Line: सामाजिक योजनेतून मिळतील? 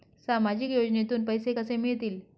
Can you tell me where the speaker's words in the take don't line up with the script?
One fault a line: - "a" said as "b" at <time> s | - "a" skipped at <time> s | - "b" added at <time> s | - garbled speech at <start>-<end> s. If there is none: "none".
- "पैसे कसे" added at 1.3 s